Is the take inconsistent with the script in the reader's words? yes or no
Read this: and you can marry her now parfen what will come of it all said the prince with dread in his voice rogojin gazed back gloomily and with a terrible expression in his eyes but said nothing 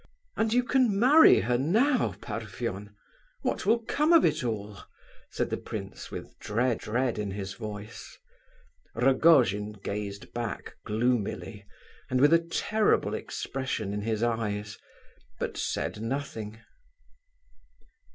yes